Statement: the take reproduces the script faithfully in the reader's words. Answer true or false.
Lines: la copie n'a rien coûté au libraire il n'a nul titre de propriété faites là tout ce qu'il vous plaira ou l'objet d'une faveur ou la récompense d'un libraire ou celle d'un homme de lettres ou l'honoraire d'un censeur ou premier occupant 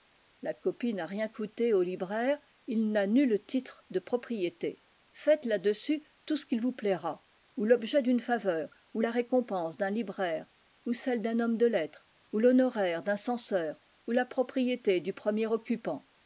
false